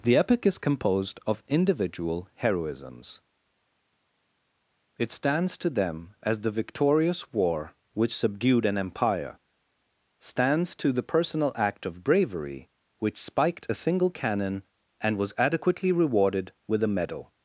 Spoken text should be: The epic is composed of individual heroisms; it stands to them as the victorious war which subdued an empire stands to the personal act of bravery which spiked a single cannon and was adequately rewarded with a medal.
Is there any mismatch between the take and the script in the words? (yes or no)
no